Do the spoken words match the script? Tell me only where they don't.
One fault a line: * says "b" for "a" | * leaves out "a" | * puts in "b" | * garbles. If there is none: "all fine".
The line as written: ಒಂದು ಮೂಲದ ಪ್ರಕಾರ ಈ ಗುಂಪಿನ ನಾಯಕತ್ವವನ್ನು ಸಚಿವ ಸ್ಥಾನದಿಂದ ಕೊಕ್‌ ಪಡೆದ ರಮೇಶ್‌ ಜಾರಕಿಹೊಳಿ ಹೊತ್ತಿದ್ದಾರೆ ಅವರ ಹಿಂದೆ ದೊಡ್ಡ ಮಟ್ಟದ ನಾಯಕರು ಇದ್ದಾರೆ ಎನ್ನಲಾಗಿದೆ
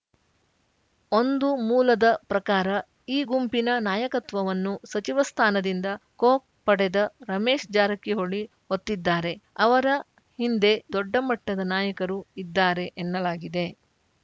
all fine